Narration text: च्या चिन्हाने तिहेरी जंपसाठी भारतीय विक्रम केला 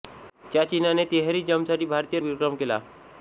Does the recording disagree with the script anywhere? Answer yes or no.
no